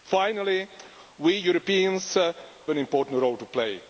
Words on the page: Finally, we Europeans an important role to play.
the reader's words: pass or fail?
pass